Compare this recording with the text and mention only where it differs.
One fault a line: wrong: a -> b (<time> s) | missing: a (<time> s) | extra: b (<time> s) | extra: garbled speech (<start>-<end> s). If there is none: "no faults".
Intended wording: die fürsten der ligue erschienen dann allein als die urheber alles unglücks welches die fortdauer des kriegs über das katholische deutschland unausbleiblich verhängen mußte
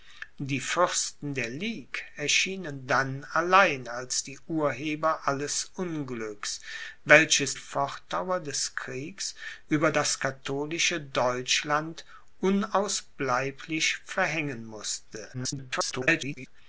missing: die (7.6 s)
extra: garbled speech (15.3-16.5 s)